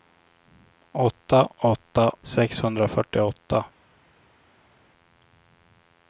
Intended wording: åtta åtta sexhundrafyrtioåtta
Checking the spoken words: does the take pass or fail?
pass